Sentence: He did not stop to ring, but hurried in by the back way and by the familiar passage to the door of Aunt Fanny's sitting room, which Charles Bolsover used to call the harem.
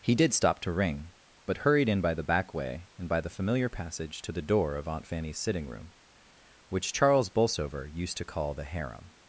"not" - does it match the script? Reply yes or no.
no